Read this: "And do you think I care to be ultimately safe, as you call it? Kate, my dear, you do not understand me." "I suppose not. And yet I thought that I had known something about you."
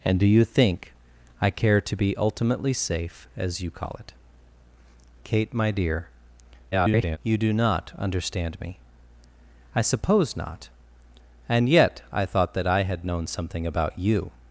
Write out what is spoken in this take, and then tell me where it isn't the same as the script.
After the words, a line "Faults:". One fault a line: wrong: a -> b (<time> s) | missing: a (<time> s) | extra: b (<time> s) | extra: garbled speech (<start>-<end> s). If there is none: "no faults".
"And do you think I care to be ultimately safe, as you call it? Kate, my dear, [garbled] you do not understand me." "I suppose not. And yet I thought that I had known something about you."
Faults:
extra: garbled speech (6.7-7.2 s)